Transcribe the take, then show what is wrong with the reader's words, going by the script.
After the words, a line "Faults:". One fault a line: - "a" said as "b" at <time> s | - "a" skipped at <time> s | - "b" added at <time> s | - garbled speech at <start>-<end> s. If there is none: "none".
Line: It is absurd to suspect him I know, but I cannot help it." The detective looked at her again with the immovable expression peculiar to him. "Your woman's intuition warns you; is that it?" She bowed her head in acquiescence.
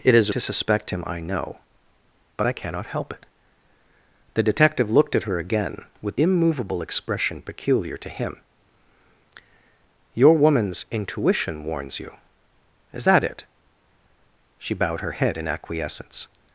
It is to suspect him I know, but I cannot help it." The detective looked at her again with immovable expression peculiar to him. "Your woman's intuition warns you; is that it?" She bowed her head in acquiescence.
Faults:
- "absurd" skipped at 0.3 s
- "the" skipped at 6.2 s